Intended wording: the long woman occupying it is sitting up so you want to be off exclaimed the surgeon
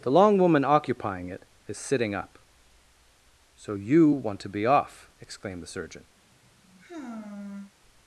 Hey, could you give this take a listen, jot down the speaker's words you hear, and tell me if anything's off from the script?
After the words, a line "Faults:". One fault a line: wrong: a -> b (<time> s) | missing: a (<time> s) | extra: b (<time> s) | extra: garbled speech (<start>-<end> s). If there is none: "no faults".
the long woman occupying it is sitting up so you want to be off exclaimed the surgeon
Faults:
no faults